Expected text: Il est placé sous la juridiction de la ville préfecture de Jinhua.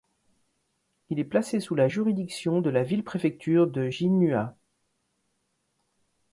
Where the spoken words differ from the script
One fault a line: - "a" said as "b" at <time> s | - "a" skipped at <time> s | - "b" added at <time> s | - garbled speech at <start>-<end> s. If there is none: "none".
none